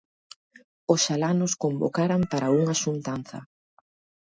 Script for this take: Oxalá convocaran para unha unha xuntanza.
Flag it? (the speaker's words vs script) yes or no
yes